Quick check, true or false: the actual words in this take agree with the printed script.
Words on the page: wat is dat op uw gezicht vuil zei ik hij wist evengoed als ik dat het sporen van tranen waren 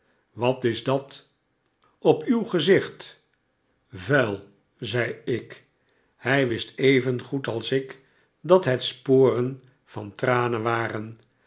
true